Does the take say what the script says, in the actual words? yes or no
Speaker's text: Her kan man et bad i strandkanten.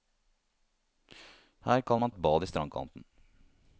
yes